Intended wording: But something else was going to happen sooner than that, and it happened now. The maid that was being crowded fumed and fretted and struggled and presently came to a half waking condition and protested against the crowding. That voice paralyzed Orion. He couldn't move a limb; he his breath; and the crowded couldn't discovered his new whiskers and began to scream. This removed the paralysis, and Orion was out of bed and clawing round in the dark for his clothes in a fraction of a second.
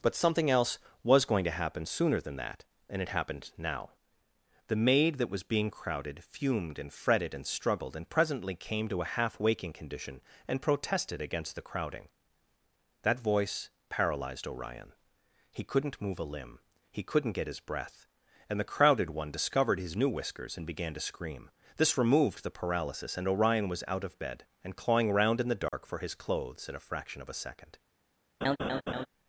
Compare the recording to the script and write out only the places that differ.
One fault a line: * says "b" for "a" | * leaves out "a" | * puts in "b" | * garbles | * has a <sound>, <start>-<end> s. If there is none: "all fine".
* puts in "couldn't get"
* says "one" for "couldn't"
* has a dropout, 25.7-25.7 s
* has a laugh, 28.4-29.1 s